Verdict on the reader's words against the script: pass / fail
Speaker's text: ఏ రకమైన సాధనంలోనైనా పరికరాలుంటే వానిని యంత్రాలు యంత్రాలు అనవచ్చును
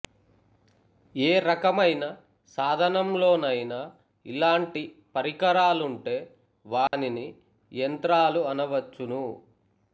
fail